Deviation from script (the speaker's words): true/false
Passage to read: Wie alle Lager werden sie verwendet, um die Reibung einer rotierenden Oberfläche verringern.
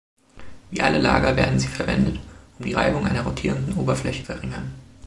false